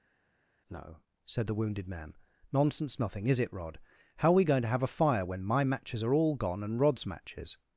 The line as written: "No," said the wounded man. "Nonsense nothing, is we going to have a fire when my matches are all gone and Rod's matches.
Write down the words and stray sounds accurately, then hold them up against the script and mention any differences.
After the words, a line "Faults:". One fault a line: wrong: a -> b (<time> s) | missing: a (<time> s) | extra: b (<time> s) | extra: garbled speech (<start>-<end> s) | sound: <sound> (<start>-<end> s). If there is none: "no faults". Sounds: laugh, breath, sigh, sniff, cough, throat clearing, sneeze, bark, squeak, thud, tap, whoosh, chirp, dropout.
"No," said the wounded man. "Nonsense nothing, is it Rod? How're we going to have a fire when my matches are all gone and Rod's matches.
Faults:
extra: it Rod How're (3.4 s)